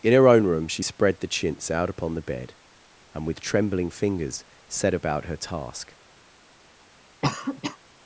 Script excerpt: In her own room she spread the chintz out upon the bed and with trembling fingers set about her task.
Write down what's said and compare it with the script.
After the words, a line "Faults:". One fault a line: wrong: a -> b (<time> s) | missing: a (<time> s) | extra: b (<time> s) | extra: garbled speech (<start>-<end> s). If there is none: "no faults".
In her own room she spread the chintz out upon the bed and with trembling fingers set about her task.
Faults:
no faults